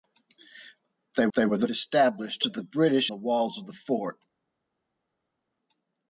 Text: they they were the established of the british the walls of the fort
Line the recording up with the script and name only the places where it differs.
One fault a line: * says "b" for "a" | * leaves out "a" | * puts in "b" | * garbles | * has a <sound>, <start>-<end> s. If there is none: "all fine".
all fine